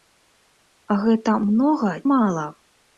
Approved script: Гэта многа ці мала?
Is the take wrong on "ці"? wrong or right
wrong